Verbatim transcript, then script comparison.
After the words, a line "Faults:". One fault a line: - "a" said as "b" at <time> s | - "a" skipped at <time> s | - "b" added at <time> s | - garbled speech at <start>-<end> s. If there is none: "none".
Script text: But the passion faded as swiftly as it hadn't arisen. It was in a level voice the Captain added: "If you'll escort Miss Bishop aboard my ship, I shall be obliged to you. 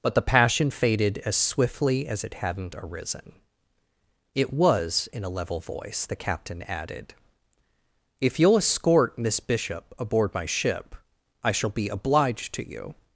But the passion faded as swiftly as it hadn't arisen. It was in a level voice the Captain added: "If you'll escort Miss Bishop aboard my ship, I shall be obliged to you.
Faults:
none